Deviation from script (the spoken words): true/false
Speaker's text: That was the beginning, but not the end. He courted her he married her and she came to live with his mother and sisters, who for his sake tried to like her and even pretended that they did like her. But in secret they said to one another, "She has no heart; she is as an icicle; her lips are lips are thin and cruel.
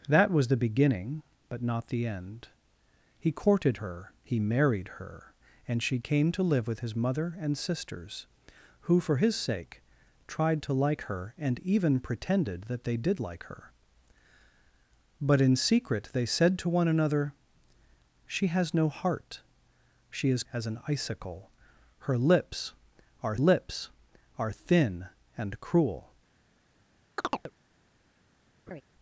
false